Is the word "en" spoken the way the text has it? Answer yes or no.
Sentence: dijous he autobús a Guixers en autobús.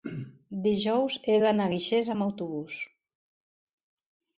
no